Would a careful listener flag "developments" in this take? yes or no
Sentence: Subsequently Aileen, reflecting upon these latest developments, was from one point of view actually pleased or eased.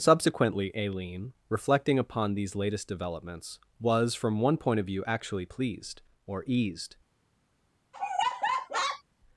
no